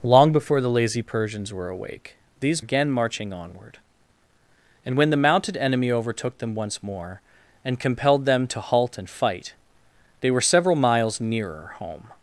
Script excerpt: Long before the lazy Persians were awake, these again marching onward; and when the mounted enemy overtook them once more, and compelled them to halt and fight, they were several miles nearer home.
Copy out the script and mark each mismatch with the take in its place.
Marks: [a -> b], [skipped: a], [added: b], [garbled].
Long before the lazy Persians were awake, these again marching onward; and when the mounted enemy overtook them once more, and compelled them to halt and fight, they were several miles nearer home.